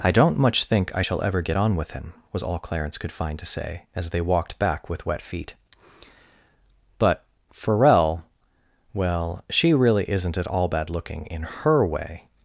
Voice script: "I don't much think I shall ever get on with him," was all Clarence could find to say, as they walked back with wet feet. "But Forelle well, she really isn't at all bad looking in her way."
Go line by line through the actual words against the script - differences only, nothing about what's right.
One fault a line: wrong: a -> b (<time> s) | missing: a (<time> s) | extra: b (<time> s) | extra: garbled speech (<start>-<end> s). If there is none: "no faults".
no faults